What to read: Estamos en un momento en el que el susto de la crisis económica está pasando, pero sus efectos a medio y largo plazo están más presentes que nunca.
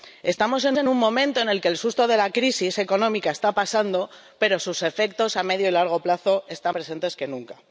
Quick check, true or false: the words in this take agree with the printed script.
false